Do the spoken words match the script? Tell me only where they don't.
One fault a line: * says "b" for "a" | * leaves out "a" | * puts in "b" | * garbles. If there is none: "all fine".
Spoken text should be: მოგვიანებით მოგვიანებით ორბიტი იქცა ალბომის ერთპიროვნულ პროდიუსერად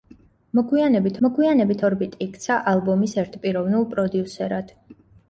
all fine